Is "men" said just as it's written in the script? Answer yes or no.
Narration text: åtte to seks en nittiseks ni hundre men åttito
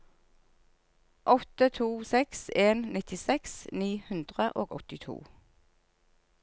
no